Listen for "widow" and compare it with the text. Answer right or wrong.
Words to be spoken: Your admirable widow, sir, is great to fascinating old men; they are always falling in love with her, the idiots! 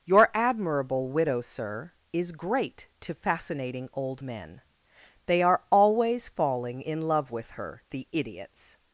right